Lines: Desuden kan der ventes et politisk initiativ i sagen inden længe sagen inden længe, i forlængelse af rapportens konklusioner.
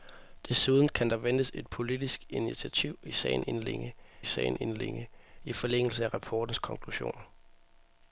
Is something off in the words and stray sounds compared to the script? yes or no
no